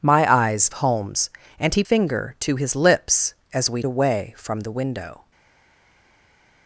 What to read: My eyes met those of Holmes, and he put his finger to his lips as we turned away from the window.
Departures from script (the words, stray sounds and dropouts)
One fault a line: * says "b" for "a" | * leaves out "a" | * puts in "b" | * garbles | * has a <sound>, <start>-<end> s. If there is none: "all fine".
* leaves out "met those of"
* leaves out "put his"
* leaves out "turned"